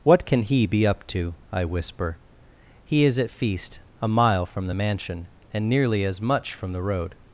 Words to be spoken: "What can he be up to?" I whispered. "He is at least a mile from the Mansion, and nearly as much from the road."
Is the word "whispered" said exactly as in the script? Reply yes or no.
no